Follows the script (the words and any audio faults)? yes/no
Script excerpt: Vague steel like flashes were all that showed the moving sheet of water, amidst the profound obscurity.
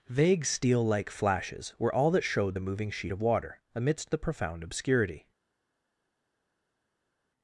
yes